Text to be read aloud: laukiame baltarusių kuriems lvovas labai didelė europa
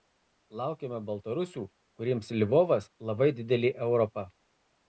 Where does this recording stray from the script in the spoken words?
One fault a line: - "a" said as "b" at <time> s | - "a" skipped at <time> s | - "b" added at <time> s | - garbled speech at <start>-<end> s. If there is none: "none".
none